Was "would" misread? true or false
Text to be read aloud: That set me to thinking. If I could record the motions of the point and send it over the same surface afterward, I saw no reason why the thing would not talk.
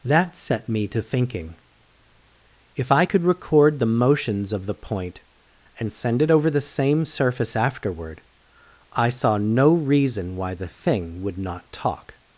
false